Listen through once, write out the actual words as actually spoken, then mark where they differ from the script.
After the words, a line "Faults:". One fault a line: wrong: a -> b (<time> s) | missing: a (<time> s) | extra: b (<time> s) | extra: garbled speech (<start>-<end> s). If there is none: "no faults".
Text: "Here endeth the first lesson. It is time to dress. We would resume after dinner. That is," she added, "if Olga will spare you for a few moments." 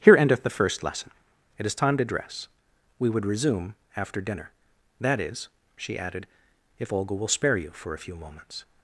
"Here endeth the first lesson. It is time to dress. We would resume after dinner. That is," she added, "if Olga will spare you for a few moments."
Faults:
no faults